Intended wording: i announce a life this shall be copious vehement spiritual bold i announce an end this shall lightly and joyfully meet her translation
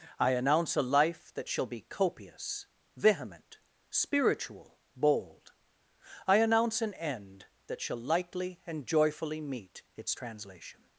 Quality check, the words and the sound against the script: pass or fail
fail